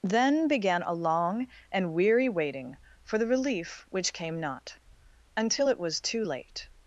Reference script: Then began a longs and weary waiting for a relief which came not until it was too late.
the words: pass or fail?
fail